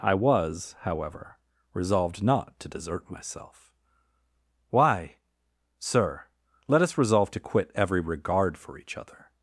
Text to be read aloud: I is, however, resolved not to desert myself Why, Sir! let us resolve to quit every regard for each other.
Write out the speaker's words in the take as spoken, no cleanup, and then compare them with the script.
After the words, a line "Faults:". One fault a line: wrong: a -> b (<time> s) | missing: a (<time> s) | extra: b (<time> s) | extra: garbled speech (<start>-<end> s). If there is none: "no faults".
I was, however, resolved not to desert myself Why, Sir! let us resolve to quit every regard for each other.
Faults:
wrong: is -> was (0.1 s)